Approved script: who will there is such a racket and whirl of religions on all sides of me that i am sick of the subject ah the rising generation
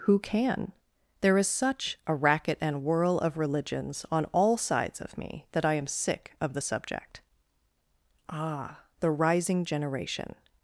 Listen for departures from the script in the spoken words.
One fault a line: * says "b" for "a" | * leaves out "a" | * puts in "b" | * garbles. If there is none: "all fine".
* says "can" for "will"